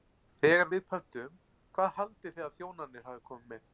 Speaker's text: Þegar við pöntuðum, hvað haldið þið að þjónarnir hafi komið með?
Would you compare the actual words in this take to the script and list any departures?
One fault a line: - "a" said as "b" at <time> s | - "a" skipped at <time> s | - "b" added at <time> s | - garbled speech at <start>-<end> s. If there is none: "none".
none